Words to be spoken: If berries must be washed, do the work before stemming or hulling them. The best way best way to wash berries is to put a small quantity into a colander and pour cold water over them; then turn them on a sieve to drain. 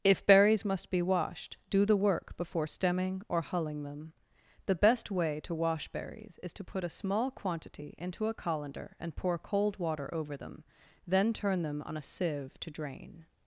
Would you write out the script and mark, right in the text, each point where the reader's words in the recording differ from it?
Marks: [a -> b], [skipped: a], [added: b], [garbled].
If berries must be washed, do the work before stemming or hulling them. The best way [skipped: best way] to wash berries is to put a small quantity into a colander and pour cold water over them; then turn them on a sieve to drain.